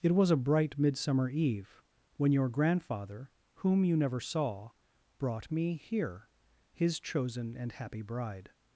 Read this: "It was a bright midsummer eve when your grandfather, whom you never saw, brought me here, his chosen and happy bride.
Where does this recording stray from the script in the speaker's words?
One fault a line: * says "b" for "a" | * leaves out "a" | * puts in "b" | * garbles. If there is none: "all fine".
all fine